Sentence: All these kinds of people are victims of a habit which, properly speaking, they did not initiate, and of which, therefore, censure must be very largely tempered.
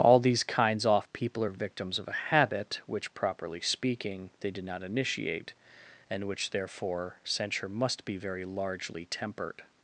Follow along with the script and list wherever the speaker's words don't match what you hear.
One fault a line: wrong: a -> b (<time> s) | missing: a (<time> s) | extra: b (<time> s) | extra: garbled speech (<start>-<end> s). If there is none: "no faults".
wrong: of -> off (0.8 s)
missing: of (6.2 s)